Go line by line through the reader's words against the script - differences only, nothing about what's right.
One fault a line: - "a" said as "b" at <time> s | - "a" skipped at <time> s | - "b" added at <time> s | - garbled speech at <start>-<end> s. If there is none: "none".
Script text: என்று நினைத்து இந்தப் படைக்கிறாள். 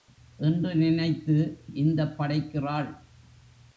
none